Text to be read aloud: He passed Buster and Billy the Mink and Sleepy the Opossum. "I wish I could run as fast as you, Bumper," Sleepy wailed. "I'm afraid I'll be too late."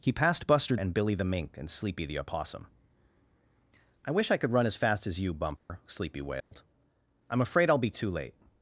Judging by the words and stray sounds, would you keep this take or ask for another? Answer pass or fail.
fail